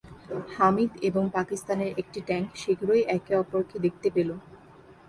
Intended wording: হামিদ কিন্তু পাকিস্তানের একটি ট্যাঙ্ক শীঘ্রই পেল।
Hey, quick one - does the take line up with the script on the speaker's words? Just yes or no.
no